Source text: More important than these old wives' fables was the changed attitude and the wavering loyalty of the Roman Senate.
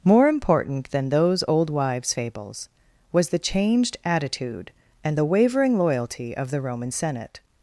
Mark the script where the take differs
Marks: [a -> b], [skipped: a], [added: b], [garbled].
More important than [these -> those] old wives' fables was the changed attitude and the wavering loyalty of the Roman Senate.